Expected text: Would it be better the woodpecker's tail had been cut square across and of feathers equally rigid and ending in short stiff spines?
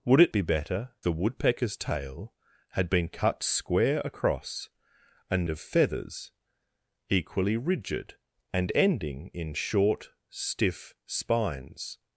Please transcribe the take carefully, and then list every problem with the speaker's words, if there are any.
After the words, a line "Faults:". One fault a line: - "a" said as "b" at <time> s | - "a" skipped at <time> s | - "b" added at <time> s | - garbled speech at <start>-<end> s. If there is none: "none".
Would it be better the woodpecker's tail had been cut square across and of feathers equally rigid and ending in short stiff spines?
Faults:
none